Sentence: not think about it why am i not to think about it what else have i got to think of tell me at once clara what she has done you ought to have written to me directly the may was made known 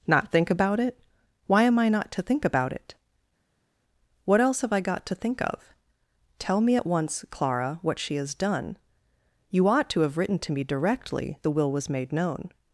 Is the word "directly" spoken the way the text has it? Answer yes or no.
yes